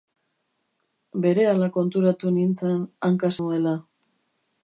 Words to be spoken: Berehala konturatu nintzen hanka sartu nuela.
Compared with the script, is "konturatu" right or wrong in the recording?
right